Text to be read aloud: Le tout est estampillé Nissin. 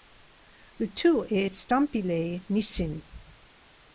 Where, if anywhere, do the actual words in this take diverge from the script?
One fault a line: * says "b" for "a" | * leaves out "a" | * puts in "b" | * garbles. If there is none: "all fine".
all fine